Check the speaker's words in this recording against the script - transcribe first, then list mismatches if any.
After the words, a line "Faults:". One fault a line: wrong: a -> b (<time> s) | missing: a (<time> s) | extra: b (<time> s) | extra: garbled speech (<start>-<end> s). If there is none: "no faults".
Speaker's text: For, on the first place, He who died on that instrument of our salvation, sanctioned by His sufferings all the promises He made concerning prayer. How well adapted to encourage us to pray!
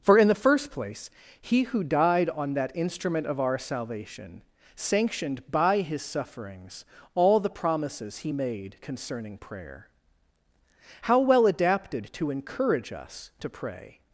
For, in the first place, He who died on that instrument of our salvation, sanctioned by His sufferings all the promises He made concerning prayer. How well adapted to encourage us to pray!
Faults:
wrong: on -> in (0.2 s)